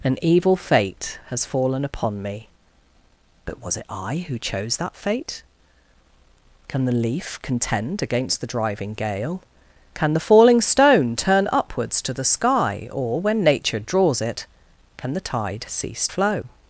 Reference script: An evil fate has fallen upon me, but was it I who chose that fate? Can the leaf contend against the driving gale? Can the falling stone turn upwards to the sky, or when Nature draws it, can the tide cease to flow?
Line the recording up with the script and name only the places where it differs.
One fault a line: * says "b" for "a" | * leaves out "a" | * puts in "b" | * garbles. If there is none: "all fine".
* leaves out "to"